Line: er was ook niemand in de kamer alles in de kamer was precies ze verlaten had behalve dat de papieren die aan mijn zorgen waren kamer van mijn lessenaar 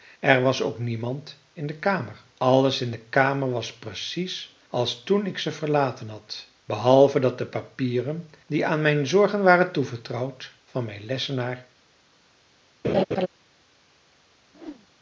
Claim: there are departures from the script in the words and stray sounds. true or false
true